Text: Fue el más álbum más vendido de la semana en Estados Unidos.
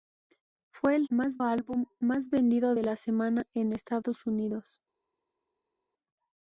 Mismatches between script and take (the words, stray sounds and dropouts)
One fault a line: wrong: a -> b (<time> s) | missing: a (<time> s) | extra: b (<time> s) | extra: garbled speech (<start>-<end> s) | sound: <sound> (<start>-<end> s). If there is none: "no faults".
no faults